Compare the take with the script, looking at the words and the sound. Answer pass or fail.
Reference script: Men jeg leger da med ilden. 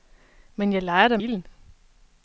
fail